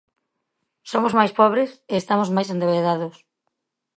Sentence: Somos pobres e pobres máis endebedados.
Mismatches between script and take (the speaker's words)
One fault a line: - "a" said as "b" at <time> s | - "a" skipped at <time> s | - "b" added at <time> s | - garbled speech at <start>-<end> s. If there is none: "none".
- "máis" added at 1.2 s
- "pobres" said as "estamos" at 2.0 s